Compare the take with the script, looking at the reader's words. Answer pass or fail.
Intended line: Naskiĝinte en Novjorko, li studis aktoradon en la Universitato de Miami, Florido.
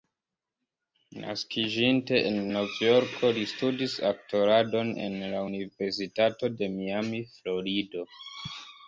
pass